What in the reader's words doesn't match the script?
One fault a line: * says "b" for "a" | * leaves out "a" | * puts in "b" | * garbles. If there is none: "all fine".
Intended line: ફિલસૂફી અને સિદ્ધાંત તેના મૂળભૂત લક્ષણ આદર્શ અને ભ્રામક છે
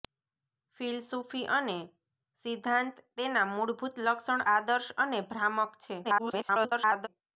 * garbles